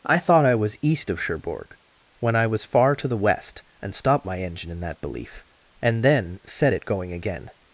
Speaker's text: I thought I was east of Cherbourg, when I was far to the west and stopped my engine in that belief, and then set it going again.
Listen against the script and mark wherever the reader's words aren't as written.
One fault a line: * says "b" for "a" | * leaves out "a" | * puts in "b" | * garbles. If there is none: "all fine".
all fine